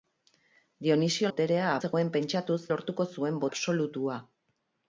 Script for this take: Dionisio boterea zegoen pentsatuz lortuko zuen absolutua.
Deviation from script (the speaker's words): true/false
false